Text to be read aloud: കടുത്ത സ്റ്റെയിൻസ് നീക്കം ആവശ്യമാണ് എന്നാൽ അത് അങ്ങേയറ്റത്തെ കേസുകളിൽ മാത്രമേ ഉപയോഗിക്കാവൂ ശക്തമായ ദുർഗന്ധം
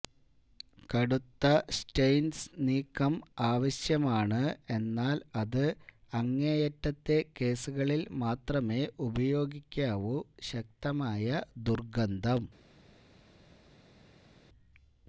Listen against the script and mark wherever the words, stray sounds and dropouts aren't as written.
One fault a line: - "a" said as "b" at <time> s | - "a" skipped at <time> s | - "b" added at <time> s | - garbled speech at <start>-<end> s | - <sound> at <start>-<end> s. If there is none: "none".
none